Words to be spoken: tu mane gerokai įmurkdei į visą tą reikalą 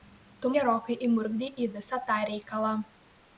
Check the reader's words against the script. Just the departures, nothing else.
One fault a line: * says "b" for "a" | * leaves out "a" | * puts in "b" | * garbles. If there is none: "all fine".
* leaves out "mane"